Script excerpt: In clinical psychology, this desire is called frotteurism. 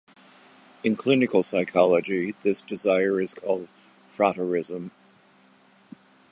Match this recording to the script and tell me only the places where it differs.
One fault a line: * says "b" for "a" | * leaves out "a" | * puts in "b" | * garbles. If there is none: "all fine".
all fine